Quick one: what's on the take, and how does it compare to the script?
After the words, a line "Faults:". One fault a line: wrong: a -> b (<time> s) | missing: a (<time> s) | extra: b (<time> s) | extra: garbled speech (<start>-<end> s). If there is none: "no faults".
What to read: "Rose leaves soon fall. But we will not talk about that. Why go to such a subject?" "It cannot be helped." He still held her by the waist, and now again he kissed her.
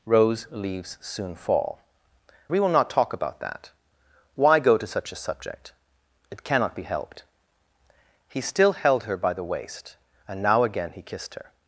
"Rose leaves soon fall. We will not talk about that. Why go to such a subject?" "It cannot be helped." He still held her by the waist, and now again he kissed her.
Faults:
missing: But (1.8 s)